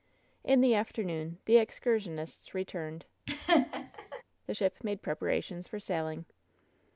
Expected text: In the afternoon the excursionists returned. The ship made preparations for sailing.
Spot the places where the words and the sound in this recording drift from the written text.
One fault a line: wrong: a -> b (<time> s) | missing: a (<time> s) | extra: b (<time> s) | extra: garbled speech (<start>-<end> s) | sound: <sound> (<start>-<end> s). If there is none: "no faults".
sound: laugh (3.3-4.2 s)